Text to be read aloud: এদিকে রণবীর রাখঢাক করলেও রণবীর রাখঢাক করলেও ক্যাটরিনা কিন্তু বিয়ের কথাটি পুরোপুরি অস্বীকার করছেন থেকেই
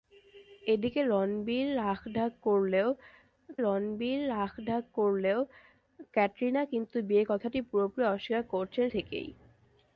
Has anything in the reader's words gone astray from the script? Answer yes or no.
no